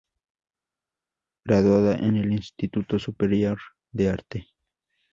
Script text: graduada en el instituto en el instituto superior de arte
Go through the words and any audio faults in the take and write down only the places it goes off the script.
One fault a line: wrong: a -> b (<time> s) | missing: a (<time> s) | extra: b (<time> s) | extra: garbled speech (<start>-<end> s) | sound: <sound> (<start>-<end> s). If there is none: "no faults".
missing: en el instituto (3.0 s)